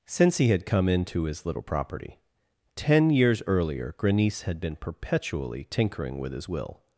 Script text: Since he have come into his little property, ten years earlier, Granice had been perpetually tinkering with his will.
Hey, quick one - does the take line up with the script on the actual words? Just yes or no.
no